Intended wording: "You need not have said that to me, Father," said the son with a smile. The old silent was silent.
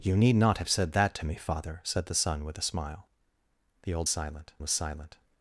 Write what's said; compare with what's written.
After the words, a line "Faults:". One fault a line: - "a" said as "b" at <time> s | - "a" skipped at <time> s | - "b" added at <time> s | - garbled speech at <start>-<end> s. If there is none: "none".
"You need not have said that to me, Father," said the son with a smile. The old silent was silent.
Faults:
none